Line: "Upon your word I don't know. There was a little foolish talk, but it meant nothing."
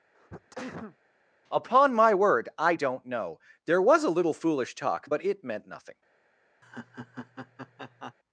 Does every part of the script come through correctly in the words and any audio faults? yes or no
no